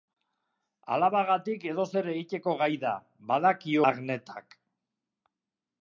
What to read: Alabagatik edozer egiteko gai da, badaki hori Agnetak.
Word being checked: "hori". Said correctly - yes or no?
no